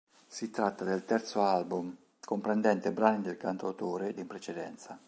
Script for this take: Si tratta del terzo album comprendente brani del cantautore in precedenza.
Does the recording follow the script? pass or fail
pass